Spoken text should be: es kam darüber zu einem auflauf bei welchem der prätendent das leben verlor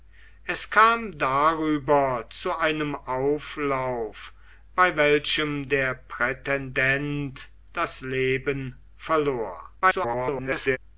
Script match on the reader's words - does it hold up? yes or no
no